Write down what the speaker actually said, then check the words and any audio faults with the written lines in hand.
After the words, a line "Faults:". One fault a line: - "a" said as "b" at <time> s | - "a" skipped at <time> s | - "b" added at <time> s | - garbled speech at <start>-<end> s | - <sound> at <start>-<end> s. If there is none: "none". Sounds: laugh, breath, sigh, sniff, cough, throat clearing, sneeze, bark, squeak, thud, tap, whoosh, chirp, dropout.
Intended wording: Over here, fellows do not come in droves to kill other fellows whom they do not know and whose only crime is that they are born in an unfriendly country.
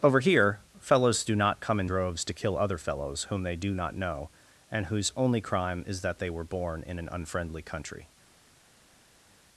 Over here, fellows do not come in droves to kill other fellows whom they do not know and whose only crime is that they were born in an unfriendly country.
Faults:
- "are" said as "were" at 6.3 s